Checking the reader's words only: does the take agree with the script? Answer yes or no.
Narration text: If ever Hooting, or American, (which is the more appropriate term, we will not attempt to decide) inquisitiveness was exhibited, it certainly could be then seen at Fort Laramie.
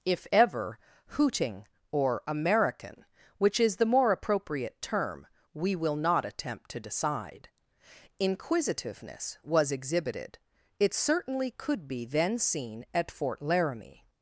yes